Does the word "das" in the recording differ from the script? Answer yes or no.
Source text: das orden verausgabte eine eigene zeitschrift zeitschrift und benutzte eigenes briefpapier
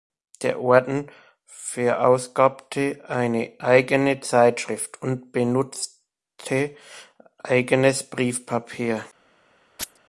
yes